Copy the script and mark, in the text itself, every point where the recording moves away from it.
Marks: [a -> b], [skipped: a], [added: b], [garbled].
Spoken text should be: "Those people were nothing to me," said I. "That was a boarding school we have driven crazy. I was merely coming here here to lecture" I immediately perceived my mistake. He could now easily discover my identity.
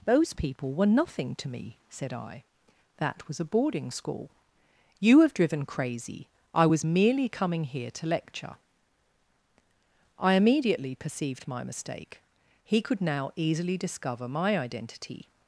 "Those people were nothing to me," said I. "That was a boarding school [we -> you] have driven crazy. I was merely coming here [skipped: here] to lecture" I immediately perceived my mistake. He could now easily discover my identity.